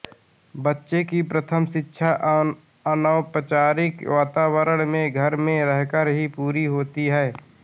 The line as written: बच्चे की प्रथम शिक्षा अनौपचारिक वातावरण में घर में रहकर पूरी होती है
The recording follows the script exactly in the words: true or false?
false